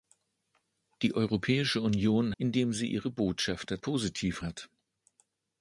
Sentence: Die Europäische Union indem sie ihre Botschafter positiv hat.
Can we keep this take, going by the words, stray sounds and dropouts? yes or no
yes